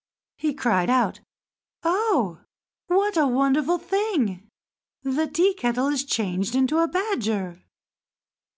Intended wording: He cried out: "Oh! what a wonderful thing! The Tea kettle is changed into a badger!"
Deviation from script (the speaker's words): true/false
false